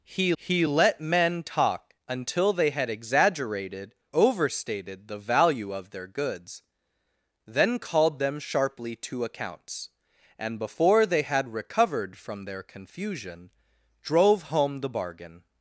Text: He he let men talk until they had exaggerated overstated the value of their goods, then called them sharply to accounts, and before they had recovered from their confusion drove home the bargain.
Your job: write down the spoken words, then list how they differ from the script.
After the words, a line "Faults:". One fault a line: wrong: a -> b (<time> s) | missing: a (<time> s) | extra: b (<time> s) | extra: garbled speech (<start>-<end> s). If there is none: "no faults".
He he let men talk until they had exaggerated overstated the value of their goods, then called them sharply to accounts, and before they had recovered from their confusion drove home the bargain.
Faults:
no faults